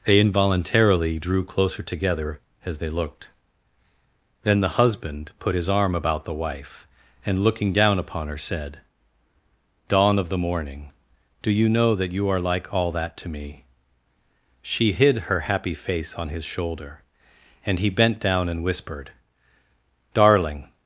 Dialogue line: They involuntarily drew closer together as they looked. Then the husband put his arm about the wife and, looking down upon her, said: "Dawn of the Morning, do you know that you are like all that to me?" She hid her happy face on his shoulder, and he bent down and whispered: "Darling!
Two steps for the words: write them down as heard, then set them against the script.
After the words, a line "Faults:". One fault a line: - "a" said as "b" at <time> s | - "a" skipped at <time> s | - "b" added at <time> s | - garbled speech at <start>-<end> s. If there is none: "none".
They involuntarily drew closer together as they looked. Then the husband put his arm about the wife and, looking down upon her, said: "Dawn of the Morning, do you know that you are like all that to me?" She hid her happy face on his shoulder, and he bent down and whispered: "Darling!
Faults:
none